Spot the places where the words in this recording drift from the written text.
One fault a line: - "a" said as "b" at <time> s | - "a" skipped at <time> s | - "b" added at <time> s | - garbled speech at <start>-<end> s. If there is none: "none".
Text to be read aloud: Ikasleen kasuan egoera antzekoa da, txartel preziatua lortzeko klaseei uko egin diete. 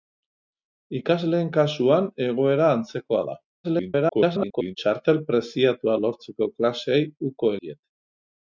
- garbled speech at 3.6-4.8 s
- "egin" skipped at 7.6 s